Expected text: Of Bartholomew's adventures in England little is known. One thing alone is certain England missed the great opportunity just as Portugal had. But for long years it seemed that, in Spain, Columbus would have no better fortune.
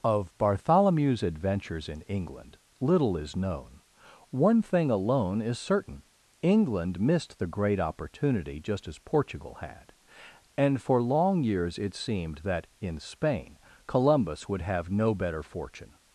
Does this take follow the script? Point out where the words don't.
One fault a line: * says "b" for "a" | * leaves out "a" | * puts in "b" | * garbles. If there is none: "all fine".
* says "And" for "But"